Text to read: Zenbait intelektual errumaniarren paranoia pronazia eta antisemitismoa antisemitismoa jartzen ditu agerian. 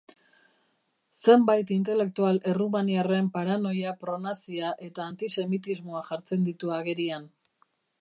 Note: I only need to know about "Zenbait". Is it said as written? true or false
true